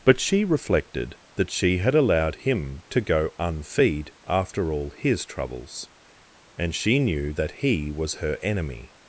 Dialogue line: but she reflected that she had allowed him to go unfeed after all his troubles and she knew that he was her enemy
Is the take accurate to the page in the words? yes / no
yes